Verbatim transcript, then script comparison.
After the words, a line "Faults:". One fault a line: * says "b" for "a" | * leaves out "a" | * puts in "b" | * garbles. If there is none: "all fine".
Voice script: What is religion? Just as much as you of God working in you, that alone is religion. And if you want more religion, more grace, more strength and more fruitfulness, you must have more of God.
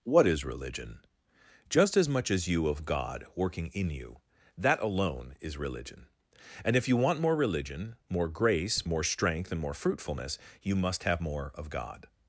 What is religion? Just as much as you of God working in you, that alone is religion. And if you want more religion, more grace, more strength and more fruitfulness, you must have more of God.
Faults:
all fine